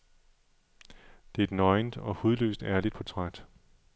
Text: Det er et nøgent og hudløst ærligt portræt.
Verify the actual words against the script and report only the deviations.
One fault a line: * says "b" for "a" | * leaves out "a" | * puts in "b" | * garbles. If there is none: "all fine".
all fine